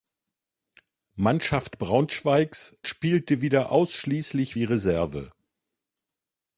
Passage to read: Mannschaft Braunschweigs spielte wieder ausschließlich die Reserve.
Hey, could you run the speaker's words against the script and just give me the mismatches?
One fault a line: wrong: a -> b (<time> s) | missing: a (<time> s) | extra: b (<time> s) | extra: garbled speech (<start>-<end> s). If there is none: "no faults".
no faults